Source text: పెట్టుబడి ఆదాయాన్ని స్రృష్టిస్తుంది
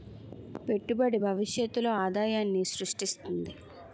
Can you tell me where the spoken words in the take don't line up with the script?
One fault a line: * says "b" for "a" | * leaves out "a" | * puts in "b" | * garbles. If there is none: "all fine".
* puts in "భవిష్యత్తులో"